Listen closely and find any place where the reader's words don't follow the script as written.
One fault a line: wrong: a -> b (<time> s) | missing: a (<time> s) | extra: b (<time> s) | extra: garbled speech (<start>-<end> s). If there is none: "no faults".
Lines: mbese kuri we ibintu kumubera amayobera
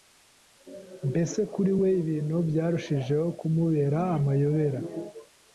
extra: byarushijeho (2.5 s)